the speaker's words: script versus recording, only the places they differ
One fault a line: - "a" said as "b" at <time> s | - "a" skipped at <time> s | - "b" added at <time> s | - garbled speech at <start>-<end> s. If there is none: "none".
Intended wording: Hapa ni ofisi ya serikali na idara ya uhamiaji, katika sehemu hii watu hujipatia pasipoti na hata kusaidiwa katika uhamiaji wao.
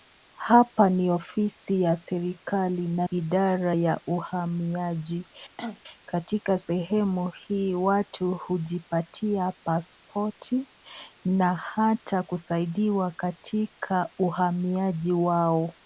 none